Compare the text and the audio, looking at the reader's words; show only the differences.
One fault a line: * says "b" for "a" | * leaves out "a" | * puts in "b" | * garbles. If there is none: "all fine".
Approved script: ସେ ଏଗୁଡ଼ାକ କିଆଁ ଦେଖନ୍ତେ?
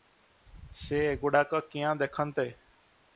all fine